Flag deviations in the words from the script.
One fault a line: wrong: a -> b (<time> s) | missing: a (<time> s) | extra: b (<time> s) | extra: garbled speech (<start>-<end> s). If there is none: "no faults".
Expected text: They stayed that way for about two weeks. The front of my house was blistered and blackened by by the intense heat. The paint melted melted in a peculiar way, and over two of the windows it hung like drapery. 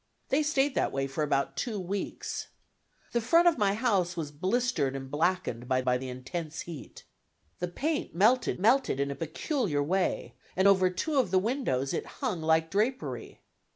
no faults